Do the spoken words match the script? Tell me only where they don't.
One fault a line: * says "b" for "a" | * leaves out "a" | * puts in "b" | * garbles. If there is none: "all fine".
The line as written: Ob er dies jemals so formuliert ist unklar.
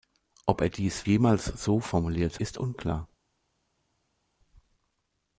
all fine